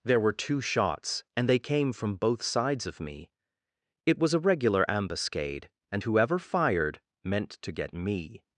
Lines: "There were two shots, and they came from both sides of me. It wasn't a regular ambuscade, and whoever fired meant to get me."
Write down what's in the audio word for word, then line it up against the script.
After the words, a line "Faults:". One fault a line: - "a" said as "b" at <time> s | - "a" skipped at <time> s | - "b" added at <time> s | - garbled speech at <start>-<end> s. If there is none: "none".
"There were two shots, and they came from both sides of me. It was a regular ambuscade, and whoever fired meant to get me."
Faults:
- "wasn't" said as "was" at 4.2 s